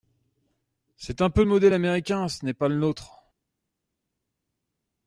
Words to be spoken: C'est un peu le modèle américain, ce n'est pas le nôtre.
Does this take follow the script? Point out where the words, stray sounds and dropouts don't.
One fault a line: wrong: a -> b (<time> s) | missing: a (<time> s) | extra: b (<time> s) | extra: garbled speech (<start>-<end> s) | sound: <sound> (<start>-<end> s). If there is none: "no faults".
no faults